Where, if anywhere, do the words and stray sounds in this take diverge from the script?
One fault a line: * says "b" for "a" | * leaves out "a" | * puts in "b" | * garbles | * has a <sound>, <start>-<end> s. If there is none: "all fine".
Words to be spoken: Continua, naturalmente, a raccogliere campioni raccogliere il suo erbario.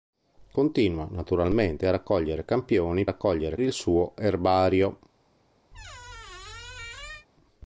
* has a squeak, 5.7-7.3 s